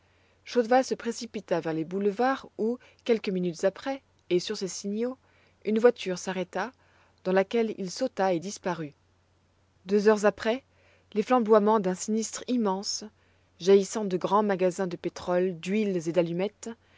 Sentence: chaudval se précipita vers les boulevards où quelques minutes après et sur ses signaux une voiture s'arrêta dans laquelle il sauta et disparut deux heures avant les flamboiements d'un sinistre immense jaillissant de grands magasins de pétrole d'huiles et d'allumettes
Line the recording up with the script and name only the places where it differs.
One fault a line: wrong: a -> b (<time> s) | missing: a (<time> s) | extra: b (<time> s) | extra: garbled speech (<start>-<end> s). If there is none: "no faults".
wrong: avant -> après (10.3 s)